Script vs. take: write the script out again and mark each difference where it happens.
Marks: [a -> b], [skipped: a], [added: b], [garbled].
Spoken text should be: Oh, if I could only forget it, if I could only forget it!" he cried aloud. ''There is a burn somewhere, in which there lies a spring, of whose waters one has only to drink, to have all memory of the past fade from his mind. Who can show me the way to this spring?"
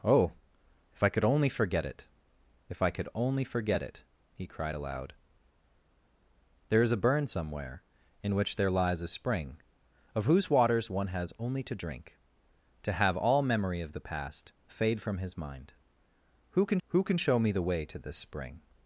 Oh, if I could only forget it, if I could only forget it!" he cried aloud. ''There is a burn somewhere, in which there lies a spring, of whose waters one has only to drink, to have all memory of the past fade from his mind. Who can [added: who can] show me the way to this spring?"